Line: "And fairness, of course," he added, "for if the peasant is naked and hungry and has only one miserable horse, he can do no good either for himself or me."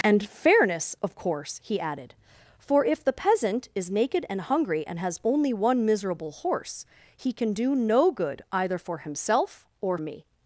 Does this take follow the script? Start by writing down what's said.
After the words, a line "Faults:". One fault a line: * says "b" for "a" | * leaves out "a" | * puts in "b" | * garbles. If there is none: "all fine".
"And fairness, of course," he added, "for if the peasant is naked and hungry and has only one miserable horse, he can do no good either for himself or me."
Faults:
all fine